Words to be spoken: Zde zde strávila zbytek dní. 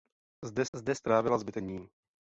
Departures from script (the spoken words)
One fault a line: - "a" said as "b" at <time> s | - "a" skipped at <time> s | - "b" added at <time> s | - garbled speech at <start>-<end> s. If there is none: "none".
none